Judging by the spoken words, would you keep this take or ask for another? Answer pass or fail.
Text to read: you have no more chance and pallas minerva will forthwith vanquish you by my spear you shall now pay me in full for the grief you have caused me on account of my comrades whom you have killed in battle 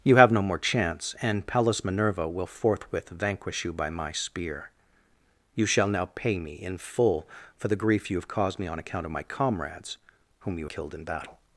fail